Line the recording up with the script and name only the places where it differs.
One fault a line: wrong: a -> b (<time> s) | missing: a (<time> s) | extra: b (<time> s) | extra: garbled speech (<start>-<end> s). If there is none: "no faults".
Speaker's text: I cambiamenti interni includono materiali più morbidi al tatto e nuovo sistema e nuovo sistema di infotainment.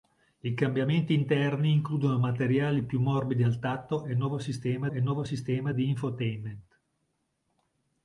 no faults